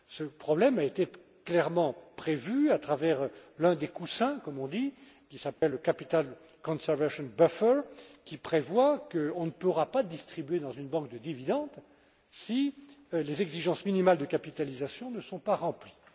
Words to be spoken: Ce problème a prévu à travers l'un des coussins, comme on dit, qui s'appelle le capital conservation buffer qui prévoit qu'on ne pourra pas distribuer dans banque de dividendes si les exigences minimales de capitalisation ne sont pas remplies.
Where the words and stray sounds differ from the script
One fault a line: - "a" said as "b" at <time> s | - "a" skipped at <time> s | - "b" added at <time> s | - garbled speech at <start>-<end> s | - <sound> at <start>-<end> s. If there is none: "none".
- "été clairement" added at 0.8 s
- dropout at 5.5-5.6 s
- "une" added at 10.7 s